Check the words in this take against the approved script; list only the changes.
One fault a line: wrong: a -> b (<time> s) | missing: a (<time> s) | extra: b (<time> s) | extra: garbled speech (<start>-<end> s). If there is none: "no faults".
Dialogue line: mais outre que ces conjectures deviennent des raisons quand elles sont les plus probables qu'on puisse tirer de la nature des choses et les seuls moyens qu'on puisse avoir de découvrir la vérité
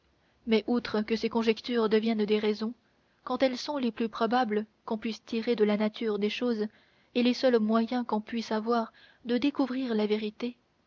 no faults